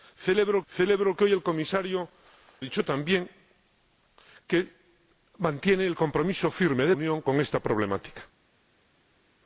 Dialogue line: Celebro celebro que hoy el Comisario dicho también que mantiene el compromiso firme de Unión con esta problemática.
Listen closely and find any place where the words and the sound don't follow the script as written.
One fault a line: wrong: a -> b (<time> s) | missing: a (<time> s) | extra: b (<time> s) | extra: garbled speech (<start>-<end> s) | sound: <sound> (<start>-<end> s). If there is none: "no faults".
no faults